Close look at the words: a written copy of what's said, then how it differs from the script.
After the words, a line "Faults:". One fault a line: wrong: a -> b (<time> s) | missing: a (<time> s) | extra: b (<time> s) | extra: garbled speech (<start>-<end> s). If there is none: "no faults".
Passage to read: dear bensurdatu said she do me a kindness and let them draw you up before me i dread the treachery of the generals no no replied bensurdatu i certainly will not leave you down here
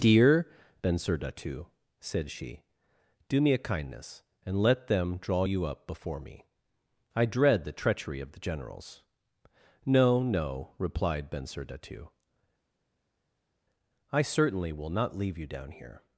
dear bensurdatu said she do me a kindness and let them draw you up before me i dread the treachery of the generals no no replied bensurdatu i certainly will not leave you down here
Faults:
no faults